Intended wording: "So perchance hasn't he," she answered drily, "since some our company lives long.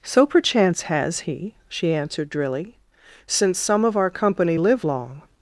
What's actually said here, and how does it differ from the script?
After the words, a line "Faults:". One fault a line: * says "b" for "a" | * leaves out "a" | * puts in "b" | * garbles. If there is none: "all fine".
"So perchance has he," she answered drily, "since some of our company live long.
Faults:
* says "has" for "hasn't"
* puts in "of"
* says "live" for "lives"